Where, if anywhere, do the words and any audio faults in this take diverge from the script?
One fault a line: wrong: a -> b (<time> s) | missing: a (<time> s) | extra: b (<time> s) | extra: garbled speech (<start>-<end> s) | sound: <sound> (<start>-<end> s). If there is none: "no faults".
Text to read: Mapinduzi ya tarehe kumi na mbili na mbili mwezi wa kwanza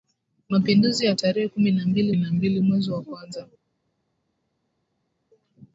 no faults